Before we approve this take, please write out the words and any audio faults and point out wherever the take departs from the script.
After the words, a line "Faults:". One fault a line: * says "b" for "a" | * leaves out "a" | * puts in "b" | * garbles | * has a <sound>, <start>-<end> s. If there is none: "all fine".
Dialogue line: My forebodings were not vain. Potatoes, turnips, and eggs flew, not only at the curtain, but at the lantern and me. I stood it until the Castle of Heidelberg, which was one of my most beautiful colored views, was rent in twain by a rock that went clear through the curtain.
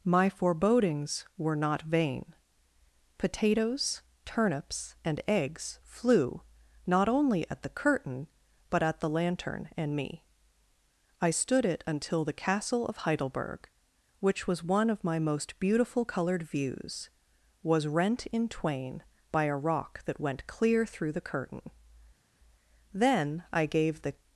My forebodings were not vain. Potatoes, turnips, and eggs flew, not only at the curtain, but at the lantern and me. I stood it until the Castle of Heidelberg, which was one of my most beautiful colored views, was rent in twain by a rock that went clear through the curtain. Then I gave the
Faults:
* puts in "Then I gave the"